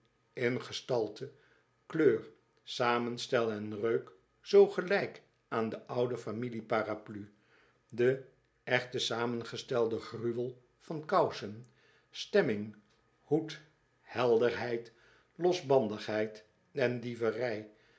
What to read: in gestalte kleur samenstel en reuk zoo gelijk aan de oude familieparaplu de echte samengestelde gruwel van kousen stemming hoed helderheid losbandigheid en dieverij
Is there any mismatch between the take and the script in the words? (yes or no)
no